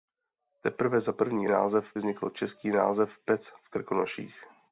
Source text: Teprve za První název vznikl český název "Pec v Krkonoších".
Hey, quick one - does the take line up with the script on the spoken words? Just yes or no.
yes